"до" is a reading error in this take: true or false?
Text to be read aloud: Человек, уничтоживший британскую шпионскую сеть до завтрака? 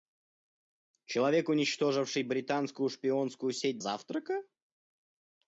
true